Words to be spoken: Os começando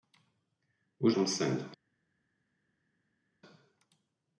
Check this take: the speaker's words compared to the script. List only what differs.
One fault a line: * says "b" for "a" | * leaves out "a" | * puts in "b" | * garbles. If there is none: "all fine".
all fine